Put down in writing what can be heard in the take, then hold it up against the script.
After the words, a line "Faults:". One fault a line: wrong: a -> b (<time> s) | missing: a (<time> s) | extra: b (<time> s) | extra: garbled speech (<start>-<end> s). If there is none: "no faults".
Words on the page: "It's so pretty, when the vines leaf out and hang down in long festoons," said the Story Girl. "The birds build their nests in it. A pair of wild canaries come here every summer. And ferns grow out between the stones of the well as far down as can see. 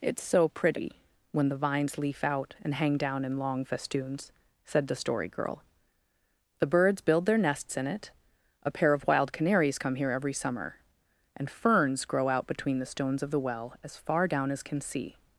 "It's so pretty, when the vines leaf out and hang down in long festoons," said the Story Girl. "The birds build their nests in it. A pair of wild canaries come here every summer. And ferns grow out between the stones of the well as far down as can see.
Faults:
no faults